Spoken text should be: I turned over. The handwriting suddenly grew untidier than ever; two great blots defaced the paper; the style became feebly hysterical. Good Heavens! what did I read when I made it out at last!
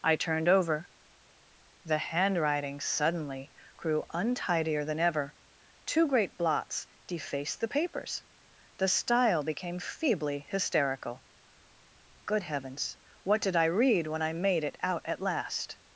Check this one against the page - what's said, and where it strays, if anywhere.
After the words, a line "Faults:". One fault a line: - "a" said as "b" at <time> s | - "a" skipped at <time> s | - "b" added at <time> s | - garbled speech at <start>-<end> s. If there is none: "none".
I turned over. The handwriting suddenly grew untidier than ever; two great blots defaced the papers; the style became feebly hysterical. Good Heavens! what did I read when I made it out at last!
Faults:
- "paper" said as "papers" at 7.7 s